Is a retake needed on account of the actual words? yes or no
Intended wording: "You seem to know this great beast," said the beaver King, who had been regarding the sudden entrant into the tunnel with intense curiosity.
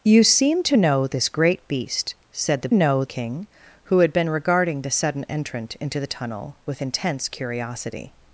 yes